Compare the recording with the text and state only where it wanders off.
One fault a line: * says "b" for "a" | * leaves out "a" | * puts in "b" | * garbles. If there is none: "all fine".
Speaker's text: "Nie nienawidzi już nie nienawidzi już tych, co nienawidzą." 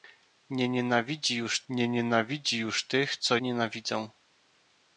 all fine